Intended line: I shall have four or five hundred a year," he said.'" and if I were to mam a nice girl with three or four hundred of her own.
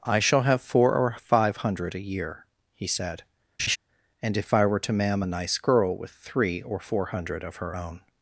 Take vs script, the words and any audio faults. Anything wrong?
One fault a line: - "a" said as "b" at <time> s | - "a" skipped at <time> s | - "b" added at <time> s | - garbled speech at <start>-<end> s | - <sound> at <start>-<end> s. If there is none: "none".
- laugh at 3.6-3.8 s